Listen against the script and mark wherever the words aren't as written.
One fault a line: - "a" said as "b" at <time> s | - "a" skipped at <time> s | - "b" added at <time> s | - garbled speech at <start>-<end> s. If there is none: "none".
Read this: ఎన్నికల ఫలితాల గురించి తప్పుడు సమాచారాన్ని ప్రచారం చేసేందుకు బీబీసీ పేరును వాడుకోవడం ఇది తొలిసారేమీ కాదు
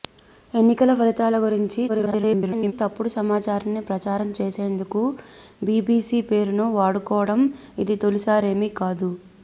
- garbled speech at 1.9-2.7 s